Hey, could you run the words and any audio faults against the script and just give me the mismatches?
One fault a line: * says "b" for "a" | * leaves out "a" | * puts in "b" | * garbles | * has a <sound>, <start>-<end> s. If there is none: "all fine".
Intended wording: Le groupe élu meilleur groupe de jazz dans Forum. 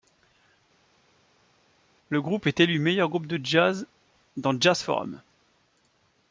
* puts in "est"
* puts in "Jazz"